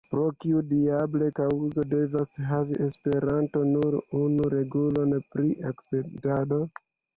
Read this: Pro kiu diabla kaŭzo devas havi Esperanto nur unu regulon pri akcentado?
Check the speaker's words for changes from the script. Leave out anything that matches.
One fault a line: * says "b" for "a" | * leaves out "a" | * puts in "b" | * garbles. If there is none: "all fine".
all fine